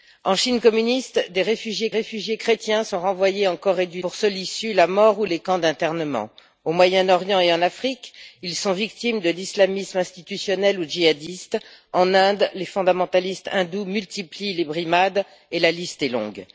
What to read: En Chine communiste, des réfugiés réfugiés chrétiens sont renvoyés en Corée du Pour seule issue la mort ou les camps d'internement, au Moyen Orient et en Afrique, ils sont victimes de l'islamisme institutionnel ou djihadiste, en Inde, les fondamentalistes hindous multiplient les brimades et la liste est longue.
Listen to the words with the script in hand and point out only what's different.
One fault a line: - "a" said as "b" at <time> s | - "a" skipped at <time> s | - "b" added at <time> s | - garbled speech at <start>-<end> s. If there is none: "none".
none